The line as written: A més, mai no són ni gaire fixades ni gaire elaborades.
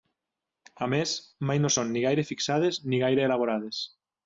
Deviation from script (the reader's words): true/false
false